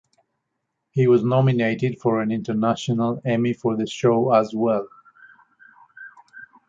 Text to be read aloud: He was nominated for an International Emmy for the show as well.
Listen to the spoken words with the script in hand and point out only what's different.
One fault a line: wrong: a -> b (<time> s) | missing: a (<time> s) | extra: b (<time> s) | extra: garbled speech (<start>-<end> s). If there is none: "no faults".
no faults